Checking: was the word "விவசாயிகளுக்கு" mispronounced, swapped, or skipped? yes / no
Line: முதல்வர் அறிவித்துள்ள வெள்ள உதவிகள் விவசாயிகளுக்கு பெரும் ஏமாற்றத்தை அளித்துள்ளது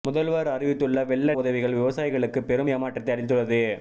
no